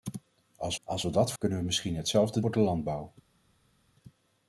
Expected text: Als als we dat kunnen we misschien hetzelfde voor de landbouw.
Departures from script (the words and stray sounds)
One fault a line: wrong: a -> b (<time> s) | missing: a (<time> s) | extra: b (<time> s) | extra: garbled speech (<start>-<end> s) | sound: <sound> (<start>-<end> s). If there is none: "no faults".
no faults